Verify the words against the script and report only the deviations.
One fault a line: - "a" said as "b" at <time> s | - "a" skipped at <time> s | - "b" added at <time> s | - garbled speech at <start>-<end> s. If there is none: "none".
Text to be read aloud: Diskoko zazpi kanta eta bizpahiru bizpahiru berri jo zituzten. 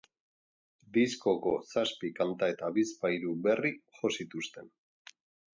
- "bizpahiru" skipped at 3.4 s